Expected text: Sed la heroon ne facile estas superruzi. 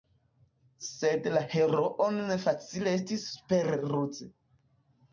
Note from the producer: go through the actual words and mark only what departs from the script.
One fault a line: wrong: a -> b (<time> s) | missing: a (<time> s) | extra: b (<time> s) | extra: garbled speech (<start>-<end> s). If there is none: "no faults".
wrong: estas -> estis (3.0 s)